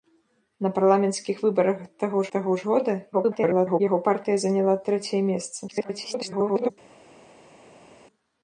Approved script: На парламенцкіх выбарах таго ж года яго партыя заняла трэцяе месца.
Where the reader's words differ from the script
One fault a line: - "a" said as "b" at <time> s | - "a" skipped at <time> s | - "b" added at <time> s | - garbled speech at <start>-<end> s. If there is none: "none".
- "таго" added at 2.4 s
- garbled speech at 3.1-3.8 s
- garbled speech at 5.7-6.7 s